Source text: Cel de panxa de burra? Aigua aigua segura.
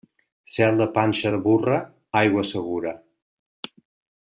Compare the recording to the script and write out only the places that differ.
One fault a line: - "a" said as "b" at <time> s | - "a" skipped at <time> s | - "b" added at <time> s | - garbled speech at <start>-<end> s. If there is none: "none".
- "aigua" skipped at 2.5 s